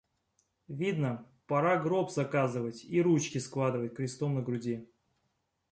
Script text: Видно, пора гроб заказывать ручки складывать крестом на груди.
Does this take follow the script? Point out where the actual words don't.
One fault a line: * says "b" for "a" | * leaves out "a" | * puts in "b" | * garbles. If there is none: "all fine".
* puts in "и"